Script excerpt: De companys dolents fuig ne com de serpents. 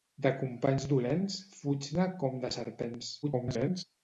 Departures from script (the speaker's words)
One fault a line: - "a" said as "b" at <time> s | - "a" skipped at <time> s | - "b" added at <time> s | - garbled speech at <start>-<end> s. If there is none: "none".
- garbled speech at 3.2-3.8 s